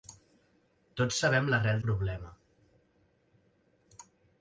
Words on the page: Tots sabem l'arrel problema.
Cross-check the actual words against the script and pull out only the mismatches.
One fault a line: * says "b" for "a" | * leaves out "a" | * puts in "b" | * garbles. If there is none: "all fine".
all fine